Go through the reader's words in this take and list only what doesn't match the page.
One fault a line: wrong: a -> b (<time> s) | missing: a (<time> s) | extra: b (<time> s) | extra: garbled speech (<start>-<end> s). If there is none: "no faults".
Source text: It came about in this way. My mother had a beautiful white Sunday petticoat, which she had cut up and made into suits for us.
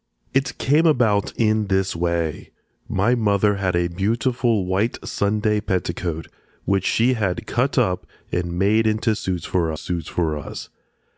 extra: suits for (9.7 s)